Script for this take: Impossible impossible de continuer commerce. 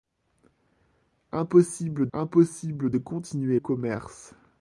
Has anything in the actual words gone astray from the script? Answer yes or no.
no